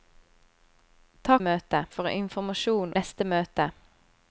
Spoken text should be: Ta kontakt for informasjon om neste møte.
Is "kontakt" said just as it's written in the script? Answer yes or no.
no